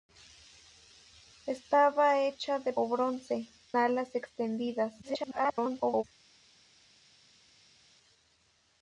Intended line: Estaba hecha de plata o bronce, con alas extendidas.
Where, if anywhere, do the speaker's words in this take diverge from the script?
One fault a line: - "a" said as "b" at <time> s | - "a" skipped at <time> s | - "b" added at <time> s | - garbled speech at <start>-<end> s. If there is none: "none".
- "plata" skipped at 2.7 s
- "con" skipped at 3.5 s
- garbled speech at 5.0-6.0 s